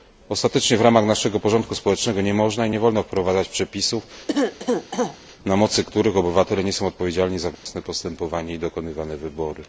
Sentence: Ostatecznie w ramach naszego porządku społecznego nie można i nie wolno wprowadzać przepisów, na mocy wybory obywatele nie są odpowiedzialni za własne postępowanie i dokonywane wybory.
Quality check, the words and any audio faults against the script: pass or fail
fail